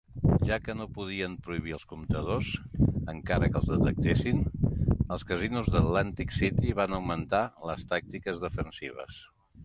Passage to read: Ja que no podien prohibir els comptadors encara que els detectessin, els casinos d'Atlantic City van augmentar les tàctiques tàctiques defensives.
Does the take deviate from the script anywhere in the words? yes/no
yes